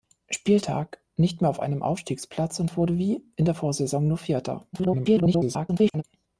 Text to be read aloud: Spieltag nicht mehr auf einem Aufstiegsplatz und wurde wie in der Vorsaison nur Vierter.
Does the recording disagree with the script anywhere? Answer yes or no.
yes